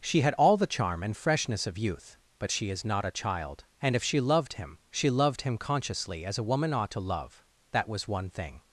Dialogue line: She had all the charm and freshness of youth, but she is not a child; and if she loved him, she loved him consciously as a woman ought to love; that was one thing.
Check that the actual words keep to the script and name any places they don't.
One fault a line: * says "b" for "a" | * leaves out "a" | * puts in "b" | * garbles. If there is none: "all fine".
all fine